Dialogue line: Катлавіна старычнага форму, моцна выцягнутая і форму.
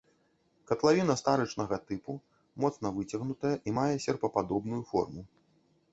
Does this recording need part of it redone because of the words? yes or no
yes